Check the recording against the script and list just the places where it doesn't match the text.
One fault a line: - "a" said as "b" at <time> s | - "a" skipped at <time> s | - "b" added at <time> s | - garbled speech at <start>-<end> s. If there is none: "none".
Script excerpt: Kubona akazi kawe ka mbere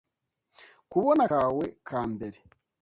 - "akazi" skipped at 1.2 s